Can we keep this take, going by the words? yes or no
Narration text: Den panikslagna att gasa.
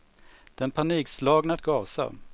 yes